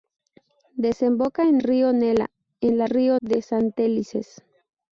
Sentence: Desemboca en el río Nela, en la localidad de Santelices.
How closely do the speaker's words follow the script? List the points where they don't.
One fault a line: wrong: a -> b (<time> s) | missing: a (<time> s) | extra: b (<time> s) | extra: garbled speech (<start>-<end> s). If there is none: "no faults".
missing: el (1.6 s)
wrong: localidad -> río (2.9 s)